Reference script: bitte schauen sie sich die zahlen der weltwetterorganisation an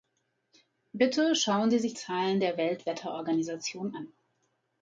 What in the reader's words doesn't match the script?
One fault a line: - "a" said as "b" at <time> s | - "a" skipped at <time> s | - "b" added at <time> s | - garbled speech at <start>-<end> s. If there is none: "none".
- "die" skipped at 1.9 s